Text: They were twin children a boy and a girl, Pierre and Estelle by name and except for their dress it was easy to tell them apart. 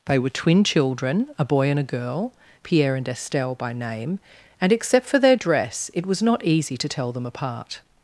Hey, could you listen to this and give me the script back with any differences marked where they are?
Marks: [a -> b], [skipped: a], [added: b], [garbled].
They were twin children a boy and a girl, Pierre and Estelle by name and except for their dress it was [added: not] easy to tell them apart.